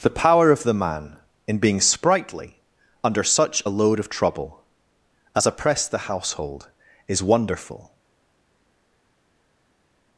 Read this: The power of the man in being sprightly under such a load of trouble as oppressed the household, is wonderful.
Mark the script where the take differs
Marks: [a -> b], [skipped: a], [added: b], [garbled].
The power of the man in being sprightly under such a load of trouble as oppressed the household, is wonderful.